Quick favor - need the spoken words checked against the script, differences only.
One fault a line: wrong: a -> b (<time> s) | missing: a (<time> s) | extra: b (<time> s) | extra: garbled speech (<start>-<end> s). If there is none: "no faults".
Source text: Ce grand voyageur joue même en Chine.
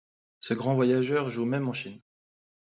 no faults